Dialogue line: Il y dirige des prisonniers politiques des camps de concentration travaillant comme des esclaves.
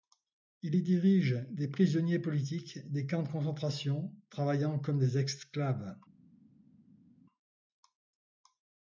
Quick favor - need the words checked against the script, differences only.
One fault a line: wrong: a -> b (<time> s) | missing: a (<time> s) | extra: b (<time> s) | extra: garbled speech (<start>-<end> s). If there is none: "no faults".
no faults